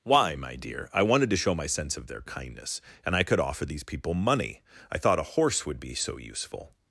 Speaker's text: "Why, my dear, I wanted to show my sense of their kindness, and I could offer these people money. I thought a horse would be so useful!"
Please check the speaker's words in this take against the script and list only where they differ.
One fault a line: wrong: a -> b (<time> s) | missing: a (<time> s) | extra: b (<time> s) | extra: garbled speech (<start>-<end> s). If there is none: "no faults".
no faults